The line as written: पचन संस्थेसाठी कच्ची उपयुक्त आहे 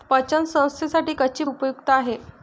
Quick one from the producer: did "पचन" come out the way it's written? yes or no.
yes